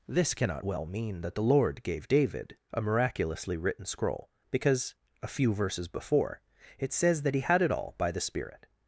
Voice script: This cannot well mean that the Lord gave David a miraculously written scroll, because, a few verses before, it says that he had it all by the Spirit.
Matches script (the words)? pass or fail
pass